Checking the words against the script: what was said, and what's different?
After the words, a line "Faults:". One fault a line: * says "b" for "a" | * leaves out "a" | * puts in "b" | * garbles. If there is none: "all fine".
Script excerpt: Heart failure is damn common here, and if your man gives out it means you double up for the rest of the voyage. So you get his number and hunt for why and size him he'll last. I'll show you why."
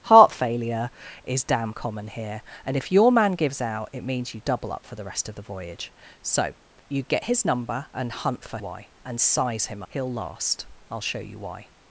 Heart failure is damn common here, and if your man gives out it means you double up for the rest of the voyage. So you get his number and hunt for why and size him he'll last. I'll show you why."
Faults:
all fine